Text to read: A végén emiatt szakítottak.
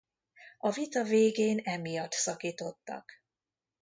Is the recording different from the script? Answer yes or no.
yes